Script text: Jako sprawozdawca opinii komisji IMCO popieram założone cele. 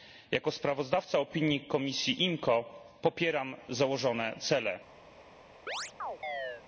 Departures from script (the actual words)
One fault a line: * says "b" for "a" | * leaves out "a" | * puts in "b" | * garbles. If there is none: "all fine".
all fine